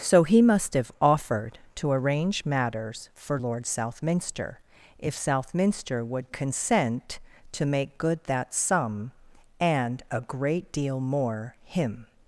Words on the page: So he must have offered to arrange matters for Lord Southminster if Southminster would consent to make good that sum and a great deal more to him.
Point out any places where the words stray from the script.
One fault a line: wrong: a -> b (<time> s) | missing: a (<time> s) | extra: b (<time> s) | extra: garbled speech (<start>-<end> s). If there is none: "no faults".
missing: to (11.6 s)